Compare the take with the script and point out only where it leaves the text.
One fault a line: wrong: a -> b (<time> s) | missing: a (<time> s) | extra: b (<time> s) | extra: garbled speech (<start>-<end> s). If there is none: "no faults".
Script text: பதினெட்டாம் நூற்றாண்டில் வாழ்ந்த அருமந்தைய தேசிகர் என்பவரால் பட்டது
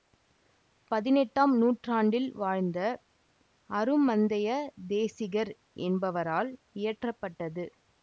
extra: இயற்ற (6.7 s)